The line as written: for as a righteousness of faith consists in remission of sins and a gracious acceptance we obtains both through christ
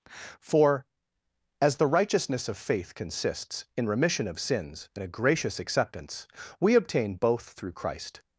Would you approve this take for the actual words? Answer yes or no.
no